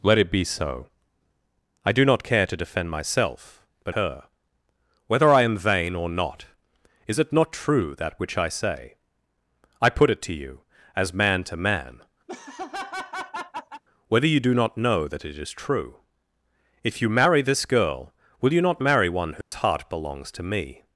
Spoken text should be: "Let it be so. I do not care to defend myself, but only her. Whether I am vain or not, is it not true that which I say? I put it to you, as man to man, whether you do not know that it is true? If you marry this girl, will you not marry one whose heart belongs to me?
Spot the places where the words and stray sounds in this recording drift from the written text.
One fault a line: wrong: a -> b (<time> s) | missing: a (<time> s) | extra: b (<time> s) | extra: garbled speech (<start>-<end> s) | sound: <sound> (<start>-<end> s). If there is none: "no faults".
missing: only (4.0 s)
sound: laugh (12.3-13.8 s)
sound: dropout (19.4-19.5 s)